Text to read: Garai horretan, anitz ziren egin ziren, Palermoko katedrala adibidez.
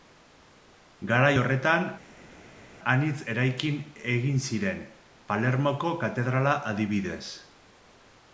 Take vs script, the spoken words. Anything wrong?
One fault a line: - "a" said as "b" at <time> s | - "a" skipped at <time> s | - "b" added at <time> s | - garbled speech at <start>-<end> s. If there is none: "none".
- "ziren" said as "eraikin" at 3.3 s